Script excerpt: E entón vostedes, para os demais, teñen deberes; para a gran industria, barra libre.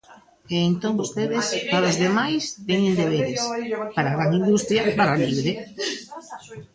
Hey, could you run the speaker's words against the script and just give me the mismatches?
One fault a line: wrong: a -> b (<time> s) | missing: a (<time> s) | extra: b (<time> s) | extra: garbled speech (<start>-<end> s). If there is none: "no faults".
no faults